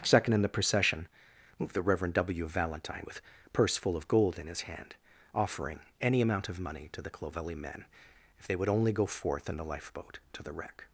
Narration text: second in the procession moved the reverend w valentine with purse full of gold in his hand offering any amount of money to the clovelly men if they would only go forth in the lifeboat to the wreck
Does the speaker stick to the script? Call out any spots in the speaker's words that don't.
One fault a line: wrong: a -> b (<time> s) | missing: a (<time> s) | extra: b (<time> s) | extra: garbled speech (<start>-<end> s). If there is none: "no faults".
no faults